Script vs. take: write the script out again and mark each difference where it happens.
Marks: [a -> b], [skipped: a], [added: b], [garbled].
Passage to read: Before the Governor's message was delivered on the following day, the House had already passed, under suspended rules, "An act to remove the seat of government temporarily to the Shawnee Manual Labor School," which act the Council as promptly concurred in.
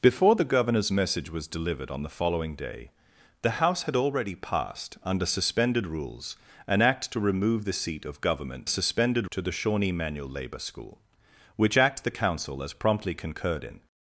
Before the Governor's message was delivered on the following day, the House had already passed, under suspended rules, "An act to remove the seat of government [temporarily -> suspended] to the Shawnee Manual Labor School," which act the Council as promptly concurred in.